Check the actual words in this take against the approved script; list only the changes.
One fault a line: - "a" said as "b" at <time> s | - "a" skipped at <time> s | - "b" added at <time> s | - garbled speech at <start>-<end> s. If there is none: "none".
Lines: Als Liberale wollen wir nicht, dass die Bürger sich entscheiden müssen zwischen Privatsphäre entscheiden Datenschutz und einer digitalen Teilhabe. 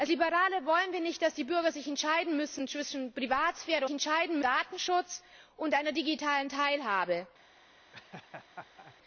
none